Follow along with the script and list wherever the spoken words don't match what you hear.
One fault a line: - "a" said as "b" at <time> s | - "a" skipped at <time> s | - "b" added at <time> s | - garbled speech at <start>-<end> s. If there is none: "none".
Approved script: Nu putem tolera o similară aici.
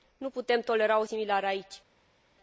none